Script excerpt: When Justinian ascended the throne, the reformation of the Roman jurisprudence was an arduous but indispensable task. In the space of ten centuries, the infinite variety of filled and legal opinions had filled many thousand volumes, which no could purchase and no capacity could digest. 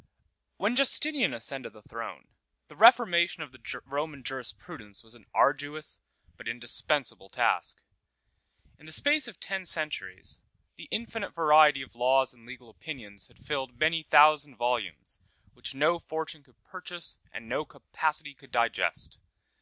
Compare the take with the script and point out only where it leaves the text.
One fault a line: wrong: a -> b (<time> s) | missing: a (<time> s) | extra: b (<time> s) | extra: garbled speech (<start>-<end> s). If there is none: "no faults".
wrong: filled -> laws (11.9 s)
extra: fortune (16.0 s)